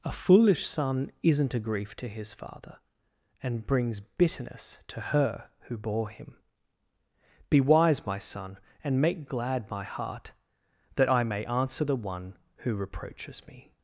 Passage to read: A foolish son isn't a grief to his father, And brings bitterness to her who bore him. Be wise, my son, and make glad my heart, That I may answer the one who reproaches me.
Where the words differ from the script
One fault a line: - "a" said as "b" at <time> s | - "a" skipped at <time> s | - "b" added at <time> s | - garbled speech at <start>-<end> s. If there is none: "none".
none